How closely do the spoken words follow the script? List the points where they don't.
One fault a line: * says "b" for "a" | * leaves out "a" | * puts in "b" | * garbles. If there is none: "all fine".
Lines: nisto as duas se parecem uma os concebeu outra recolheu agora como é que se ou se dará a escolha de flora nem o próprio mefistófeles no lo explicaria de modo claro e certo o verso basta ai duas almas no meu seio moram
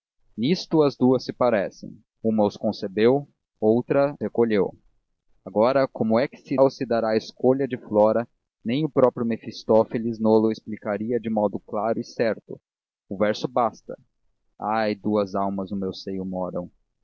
all fine